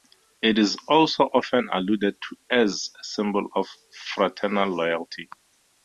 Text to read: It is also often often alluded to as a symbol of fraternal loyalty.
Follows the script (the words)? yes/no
no